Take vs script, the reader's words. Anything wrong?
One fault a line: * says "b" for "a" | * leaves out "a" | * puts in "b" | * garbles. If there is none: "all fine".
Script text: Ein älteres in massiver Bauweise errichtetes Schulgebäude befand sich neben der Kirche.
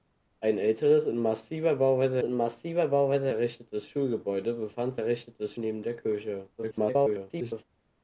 * puts in "in massiver Bauweise"
* says "errichtetes" for "sich"
* garbles